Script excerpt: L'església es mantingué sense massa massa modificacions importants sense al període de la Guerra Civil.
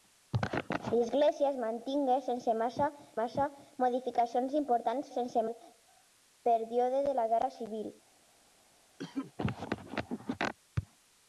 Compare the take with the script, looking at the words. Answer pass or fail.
pass